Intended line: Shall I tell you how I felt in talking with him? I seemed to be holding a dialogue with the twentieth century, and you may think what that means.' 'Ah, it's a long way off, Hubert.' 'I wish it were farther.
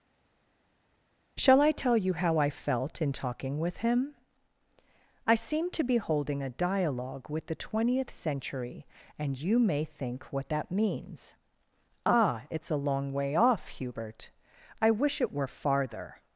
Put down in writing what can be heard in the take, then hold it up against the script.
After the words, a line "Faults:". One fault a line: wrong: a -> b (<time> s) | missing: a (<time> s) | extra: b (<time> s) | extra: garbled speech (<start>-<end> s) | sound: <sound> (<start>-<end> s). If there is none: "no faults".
Shall I tell you how I felt in talking with him? I seemed to be holding a dialogue with the twentieth century, and you may think what that means.' 'Ah, it's a long way off, Hubert.' 'I wish it were farther.
Faults:
no faults